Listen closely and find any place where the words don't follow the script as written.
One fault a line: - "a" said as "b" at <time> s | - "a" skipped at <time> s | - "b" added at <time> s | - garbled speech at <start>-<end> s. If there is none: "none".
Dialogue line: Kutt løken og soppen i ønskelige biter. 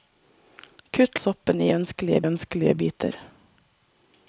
- "løken" skipped at 1.2 s
- "ønskelige" added at 2.3 s